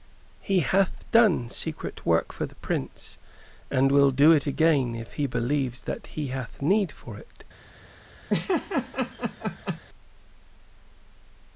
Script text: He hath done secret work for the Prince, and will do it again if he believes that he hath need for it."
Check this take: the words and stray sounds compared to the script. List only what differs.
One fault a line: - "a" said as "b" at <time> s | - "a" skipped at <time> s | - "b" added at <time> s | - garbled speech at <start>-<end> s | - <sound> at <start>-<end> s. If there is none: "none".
- laugh at 8.3-9.8 s